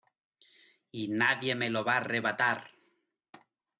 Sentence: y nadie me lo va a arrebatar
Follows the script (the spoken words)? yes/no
yes